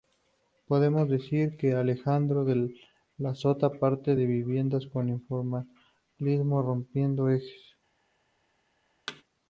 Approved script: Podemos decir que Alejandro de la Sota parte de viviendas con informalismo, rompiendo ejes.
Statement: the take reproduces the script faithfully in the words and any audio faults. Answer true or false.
false